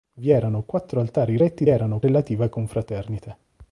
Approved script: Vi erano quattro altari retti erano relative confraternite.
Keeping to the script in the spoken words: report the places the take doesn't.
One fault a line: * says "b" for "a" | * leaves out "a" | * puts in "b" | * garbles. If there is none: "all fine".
all fine